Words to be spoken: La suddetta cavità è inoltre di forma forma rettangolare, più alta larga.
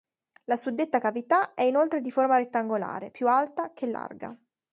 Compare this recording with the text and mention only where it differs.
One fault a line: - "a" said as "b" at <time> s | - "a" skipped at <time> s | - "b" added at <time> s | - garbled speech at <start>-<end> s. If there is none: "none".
- "forma" skipped at 2.4 s
- "che" added at 3.7 s